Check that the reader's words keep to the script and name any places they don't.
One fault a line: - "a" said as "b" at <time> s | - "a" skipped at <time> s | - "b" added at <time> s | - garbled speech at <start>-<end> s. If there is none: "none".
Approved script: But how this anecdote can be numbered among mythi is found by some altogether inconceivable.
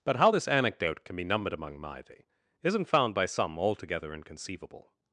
- "is" said as "isn't" at 2.6 s